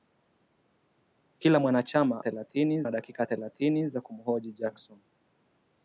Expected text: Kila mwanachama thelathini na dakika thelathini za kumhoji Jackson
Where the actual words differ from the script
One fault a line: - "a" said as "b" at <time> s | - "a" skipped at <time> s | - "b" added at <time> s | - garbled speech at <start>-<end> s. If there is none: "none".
none